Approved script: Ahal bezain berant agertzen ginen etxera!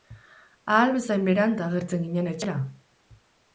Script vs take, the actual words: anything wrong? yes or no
no